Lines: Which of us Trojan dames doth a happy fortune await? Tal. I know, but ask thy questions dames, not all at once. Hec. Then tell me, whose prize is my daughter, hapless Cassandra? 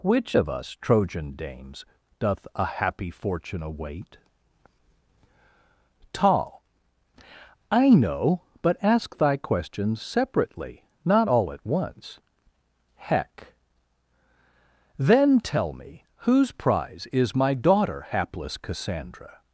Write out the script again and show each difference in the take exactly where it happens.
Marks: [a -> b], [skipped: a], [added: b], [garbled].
Which of us Trojan dames doth a happy fortune await? Tal. I know, but ask thy questions [dames, -> separately] not all at once. Hec. Then tell me, whose prize is my daughter, hapless Cassandra?